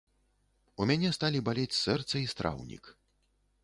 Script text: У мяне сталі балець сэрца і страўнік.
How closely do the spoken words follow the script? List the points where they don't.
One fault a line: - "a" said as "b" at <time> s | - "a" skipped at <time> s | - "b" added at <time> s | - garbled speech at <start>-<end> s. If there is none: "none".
none